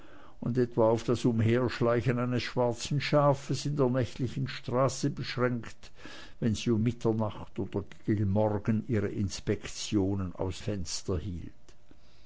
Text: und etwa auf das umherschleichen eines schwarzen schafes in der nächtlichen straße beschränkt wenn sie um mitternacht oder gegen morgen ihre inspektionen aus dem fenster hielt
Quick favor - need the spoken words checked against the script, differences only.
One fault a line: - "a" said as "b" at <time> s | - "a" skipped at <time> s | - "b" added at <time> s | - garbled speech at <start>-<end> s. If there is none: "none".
- "dem" skipped at 10.6 s